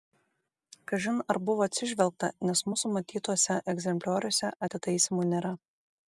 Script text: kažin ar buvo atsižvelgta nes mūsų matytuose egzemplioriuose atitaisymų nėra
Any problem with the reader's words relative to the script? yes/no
no